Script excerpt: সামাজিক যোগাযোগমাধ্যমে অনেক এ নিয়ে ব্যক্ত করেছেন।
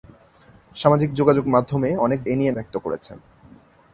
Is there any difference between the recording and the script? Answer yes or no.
no